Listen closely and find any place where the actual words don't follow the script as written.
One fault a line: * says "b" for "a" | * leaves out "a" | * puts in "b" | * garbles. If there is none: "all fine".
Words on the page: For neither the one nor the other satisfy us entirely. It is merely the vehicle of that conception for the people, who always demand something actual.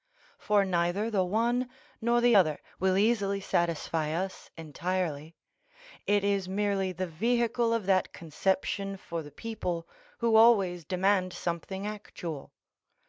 * puts in "will easily"